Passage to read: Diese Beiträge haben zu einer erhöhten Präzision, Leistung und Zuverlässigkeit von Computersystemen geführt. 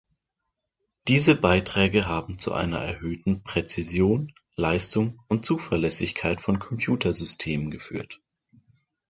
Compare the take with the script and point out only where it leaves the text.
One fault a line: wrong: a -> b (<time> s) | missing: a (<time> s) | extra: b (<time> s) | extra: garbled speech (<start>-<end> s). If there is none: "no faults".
no faults